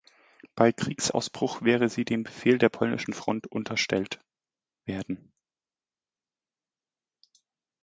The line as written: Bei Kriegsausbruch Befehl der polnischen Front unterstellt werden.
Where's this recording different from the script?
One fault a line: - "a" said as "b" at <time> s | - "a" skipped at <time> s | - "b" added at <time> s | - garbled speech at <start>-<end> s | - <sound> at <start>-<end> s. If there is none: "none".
- "wäre sie dem" added at 1.6 s